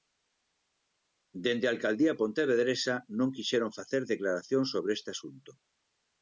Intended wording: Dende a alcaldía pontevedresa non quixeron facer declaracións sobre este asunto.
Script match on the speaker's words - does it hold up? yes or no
yes